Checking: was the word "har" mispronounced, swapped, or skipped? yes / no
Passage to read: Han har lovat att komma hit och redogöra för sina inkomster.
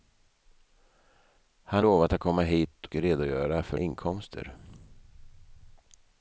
yes